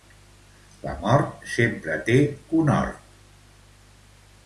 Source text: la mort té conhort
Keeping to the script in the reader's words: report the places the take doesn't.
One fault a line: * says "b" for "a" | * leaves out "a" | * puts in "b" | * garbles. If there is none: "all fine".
* puts in "sempre"